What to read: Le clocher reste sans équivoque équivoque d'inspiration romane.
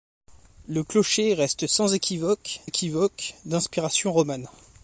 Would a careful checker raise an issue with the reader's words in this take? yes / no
no